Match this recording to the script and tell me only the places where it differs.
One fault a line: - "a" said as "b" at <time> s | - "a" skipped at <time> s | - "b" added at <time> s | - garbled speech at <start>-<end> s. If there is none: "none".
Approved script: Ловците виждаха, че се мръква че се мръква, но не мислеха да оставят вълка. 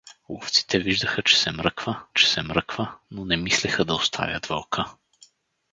none